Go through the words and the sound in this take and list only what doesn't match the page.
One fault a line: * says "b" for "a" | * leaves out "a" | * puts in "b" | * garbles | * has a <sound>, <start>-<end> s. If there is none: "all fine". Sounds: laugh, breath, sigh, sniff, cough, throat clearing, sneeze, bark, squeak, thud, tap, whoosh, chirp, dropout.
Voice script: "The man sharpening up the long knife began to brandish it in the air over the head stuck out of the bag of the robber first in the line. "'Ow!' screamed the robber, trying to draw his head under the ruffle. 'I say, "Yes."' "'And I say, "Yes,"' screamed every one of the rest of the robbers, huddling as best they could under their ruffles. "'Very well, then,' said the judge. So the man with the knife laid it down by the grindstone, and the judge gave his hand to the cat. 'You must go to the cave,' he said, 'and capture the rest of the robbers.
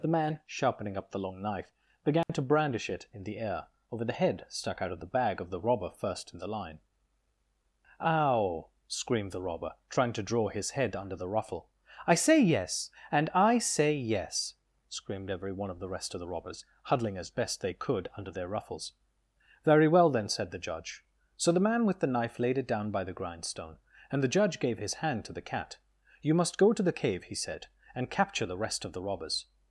* has a dropout, 2.2-2.3 s